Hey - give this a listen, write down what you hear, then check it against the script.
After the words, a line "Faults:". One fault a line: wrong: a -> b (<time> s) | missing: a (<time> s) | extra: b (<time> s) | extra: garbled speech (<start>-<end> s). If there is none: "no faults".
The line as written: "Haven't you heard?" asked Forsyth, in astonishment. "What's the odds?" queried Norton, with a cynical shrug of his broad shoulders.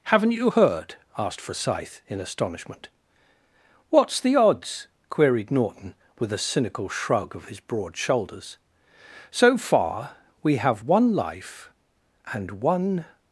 "Haven't you heard?" asked Forsyth, in astonishment. "What's the odds?" queried Norton, with a cynical shrug of his broad shoulders. "So far, we have one life and one
Faults:
extra: So far we have one life and one (9.3 s)